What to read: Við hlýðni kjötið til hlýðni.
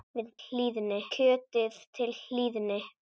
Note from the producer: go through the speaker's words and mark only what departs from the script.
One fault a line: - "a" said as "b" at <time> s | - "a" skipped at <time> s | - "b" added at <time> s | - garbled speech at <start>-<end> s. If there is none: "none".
none